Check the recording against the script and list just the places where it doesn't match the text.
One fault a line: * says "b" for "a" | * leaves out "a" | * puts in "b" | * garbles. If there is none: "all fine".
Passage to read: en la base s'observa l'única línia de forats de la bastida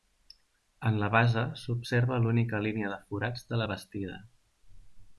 all fine